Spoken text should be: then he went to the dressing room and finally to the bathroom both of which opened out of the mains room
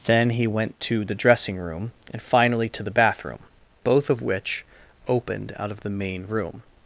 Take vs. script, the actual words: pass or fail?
fail